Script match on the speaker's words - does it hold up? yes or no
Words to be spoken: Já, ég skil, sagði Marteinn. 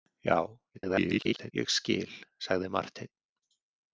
no